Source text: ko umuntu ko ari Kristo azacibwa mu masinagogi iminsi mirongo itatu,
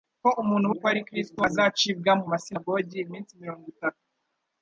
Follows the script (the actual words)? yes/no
yes